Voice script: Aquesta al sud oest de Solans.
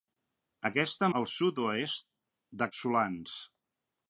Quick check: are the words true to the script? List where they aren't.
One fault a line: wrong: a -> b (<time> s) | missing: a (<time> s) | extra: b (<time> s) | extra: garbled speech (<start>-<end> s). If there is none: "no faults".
no faults